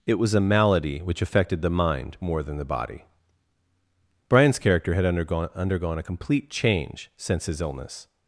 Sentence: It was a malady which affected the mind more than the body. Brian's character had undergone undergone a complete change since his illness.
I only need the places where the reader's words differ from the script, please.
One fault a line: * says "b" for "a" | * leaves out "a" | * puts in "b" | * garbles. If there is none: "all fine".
all fine